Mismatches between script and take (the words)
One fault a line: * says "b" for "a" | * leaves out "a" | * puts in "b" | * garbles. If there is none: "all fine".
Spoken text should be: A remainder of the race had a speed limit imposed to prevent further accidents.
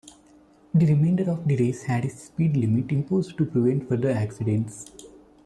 * says "The" for "A"